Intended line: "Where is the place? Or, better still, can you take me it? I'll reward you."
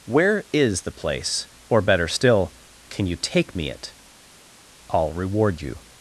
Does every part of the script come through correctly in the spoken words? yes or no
yes